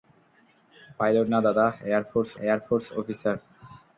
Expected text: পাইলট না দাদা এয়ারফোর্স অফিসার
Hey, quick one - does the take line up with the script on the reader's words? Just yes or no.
no